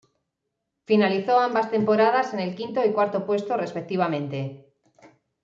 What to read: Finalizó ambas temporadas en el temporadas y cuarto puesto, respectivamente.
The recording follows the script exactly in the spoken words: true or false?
false